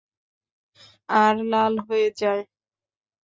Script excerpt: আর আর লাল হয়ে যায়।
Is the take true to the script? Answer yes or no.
no